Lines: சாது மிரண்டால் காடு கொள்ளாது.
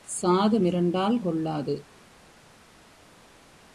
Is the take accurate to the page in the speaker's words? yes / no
no